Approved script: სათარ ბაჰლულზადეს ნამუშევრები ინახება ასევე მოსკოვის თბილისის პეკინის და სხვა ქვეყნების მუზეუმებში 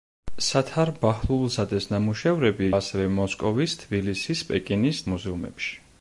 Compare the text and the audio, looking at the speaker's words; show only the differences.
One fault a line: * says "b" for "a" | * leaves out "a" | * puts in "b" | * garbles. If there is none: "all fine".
* leaves out "ინახება"
* leaves out "და სხვა ქვეყნების"